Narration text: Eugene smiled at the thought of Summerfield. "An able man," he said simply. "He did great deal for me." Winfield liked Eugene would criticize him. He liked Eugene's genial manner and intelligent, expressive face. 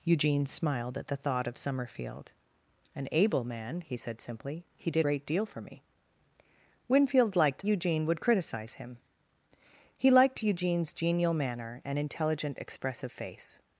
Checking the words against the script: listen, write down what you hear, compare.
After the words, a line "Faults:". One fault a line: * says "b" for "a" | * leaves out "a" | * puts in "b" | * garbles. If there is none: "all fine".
Eugene smiled at the thought of Summerfield. "An able man," he said simply. "He did great deal for me." Winfield liked Eugene would criticize him. He liked Eugene's genial manner and intelligent, expressive face.
Faults:
all fine